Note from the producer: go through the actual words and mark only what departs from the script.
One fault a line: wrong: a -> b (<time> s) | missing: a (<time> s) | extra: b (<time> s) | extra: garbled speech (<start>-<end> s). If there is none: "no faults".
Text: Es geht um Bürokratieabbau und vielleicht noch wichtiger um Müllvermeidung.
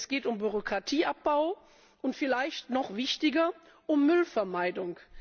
no faults